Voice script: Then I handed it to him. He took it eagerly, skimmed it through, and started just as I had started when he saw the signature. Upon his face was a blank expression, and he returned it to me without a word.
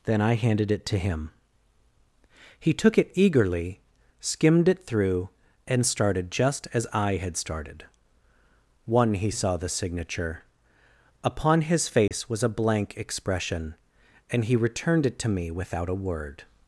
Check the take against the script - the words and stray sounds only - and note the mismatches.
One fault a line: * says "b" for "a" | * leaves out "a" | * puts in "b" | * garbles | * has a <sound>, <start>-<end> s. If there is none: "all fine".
* says "one" for "when"
* has a dropout, 12.1-12.1 s